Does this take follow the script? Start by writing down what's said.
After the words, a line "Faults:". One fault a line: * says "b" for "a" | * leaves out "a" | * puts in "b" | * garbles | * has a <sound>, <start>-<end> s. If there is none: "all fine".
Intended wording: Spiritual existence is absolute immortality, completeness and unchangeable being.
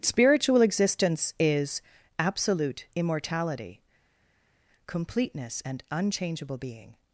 Spiritual existence is absolute immortality, completeness and unchangeable being.
Faults:
all fine